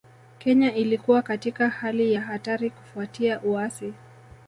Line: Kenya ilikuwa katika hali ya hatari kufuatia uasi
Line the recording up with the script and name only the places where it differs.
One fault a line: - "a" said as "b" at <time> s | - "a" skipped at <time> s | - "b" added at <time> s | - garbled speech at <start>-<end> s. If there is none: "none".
none